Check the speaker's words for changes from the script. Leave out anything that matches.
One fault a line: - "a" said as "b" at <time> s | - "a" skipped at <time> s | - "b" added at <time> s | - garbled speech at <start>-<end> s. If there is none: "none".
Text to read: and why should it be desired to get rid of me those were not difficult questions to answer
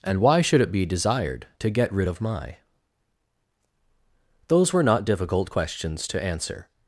- "me" said as "my" at 2.2 s